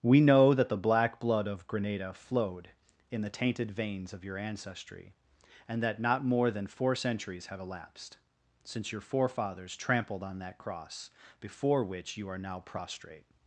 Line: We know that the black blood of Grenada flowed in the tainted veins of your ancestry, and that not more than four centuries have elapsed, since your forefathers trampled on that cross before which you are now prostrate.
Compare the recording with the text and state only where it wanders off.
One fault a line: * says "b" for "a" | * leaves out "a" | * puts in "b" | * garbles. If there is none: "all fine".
all fine